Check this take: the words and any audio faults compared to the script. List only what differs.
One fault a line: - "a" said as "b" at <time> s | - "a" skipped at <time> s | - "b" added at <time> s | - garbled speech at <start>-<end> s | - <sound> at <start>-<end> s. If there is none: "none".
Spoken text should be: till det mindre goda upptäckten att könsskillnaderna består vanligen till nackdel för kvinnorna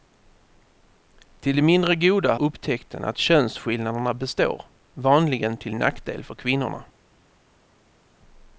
none